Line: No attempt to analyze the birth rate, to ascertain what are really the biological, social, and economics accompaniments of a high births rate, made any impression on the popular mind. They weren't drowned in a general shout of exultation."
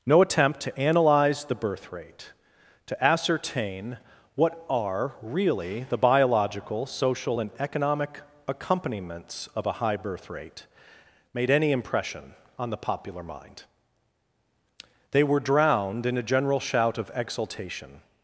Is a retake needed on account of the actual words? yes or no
yes